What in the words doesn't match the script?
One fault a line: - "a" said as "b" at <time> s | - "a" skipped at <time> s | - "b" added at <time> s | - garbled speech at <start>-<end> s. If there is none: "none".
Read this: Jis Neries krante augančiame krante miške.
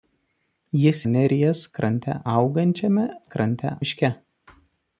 none